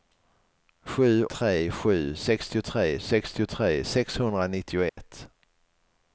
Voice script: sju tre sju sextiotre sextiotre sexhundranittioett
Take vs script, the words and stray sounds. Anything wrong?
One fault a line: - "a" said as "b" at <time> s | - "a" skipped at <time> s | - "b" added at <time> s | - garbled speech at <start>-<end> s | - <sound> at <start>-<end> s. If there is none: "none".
- dropout at 4.9-5.0 s